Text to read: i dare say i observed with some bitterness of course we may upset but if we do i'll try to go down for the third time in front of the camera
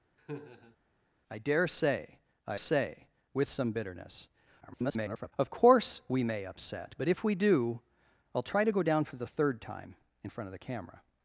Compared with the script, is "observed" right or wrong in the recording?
wrong